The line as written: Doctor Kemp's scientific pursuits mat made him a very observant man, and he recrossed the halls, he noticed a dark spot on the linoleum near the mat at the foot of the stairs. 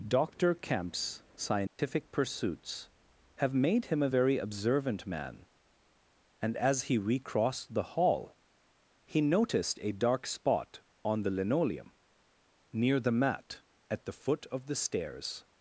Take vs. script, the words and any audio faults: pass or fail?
fail